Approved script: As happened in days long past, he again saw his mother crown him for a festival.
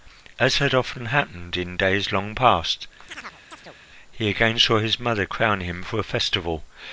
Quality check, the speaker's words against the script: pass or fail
fail